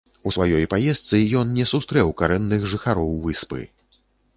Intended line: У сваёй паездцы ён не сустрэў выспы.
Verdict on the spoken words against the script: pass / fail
fail